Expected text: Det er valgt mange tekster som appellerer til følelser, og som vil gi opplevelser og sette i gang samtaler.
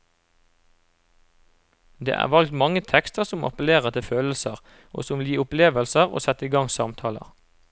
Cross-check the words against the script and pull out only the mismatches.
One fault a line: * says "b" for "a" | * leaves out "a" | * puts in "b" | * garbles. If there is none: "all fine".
all fine